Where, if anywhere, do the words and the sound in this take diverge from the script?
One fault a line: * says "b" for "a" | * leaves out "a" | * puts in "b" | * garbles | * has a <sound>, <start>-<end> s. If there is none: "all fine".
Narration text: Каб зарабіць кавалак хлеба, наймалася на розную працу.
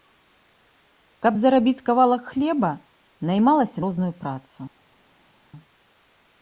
* leaves out "на"